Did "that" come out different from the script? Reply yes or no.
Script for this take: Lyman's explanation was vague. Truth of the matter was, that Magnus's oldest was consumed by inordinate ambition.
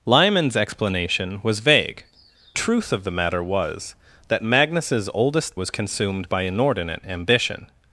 no